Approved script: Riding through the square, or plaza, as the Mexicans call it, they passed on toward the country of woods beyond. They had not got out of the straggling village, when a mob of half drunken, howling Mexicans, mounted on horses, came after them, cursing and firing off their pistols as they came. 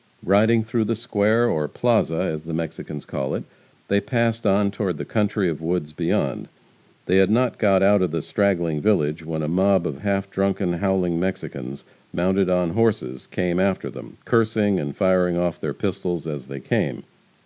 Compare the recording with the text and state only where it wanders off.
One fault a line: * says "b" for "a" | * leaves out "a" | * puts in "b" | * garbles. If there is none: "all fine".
all fine